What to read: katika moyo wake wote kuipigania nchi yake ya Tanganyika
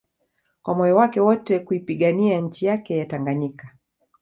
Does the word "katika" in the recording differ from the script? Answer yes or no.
yes